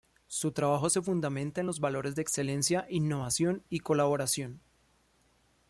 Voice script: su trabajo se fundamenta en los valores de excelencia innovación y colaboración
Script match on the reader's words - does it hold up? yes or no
yes